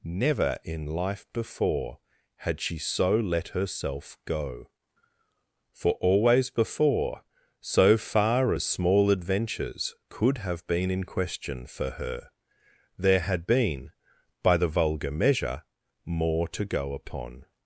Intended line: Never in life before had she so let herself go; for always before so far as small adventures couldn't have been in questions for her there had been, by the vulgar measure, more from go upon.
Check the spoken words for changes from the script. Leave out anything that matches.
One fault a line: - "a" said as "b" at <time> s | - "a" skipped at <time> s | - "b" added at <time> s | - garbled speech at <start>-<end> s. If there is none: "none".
- "couldn't" said as "could" at 10.1 s
- "questions" said as "question" at 11.0 s
- "from" said as "to" at 16.5 s